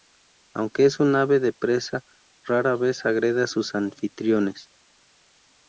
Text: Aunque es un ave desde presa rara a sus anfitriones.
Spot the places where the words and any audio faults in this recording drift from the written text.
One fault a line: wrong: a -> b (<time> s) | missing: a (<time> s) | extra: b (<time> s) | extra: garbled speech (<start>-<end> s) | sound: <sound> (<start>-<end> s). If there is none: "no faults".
wrong: desde -> de (1.4 s)
extra: vez agrede (2.8 s)